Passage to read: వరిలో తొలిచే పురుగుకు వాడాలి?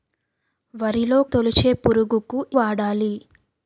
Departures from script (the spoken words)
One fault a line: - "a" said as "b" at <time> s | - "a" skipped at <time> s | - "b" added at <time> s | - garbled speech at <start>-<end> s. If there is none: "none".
none